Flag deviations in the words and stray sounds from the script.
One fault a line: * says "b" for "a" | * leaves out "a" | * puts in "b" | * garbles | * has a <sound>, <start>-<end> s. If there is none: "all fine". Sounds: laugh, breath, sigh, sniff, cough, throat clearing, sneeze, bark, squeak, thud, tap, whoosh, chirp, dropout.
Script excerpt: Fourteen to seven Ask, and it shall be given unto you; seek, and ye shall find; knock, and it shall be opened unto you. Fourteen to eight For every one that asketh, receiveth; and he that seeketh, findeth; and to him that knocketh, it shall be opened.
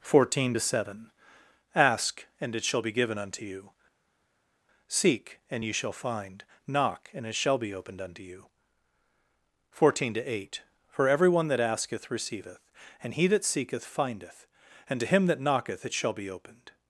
all fine